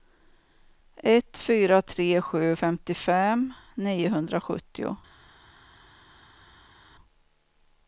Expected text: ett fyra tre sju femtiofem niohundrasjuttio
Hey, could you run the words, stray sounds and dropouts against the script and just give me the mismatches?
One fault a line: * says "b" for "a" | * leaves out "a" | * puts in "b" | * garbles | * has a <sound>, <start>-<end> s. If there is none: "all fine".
all fine